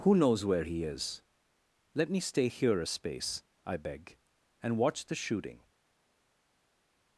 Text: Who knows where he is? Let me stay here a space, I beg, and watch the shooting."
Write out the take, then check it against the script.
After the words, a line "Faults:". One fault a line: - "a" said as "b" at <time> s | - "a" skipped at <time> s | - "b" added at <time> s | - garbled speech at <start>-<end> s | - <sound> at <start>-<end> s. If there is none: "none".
Who knows where he is? Let me stay here a space, I beg, and watch the shooting."
Faults:
none